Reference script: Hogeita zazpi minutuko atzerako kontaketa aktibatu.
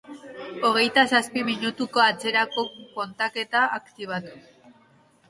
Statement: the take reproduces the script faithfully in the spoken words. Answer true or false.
true